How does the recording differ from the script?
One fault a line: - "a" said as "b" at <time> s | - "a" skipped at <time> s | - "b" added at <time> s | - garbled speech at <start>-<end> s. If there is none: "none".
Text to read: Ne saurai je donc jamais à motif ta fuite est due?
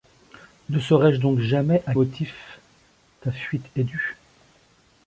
none